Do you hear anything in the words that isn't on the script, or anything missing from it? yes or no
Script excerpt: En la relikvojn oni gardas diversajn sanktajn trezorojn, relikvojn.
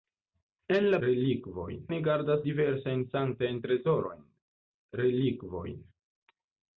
no